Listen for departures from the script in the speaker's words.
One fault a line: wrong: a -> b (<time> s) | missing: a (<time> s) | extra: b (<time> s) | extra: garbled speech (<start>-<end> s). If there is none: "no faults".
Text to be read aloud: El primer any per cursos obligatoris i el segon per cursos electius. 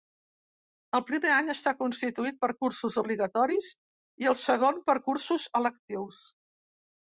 extra: està constituït (1.5 s)